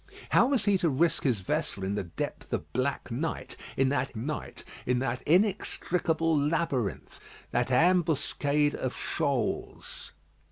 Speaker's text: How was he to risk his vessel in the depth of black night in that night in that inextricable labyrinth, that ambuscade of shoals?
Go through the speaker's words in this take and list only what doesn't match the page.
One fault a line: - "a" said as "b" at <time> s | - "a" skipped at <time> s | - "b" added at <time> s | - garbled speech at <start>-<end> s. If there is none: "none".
none